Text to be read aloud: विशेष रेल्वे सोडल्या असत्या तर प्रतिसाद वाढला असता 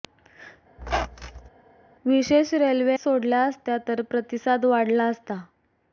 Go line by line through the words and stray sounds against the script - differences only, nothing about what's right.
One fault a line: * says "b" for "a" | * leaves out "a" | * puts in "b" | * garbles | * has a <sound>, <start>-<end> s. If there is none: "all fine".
* has a squeak, 0.8-1.5 s